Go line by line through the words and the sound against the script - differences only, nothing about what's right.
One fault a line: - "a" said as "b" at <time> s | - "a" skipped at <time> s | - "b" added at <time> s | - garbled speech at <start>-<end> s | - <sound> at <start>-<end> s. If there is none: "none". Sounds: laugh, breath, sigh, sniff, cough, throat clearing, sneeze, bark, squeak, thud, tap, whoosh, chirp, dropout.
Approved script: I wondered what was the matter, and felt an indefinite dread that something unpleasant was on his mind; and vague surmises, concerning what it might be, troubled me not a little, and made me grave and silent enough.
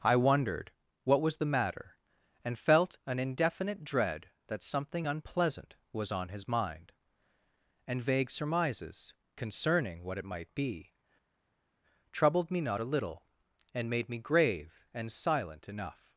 none